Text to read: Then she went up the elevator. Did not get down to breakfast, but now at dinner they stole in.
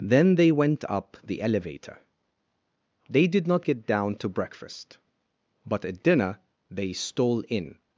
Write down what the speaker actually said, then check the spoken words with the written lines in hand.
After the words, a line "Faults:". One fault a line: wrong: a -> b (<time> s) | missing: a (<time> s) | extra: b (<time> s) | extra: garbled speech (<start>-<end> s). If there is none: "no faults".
Then they went up the elevator. They did not get down to breakfast, but at dinner they stole in.
Faults:
wrong: she -> they (0.3 s)
extra: They (3.1 s)
missing: now (5.8 s)